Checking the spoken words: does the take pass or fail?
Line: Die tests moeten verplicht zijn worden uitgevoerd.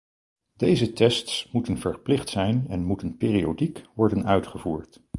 fail